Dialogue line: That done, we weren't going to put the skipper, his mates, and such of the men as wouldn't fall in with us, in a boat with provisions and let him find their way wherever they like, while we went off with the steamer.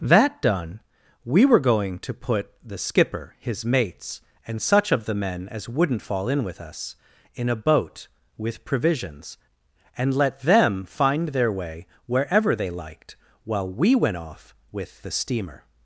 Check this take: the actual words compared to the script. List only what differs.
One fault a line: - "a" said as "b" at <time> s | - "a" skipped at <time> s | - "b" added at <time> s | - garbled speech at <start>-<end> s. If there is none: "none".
- "weren't" said as "were" at 1.4 s
- "him" said as "them" at 10.4 s
- "like" said as "liked" at 12.7 s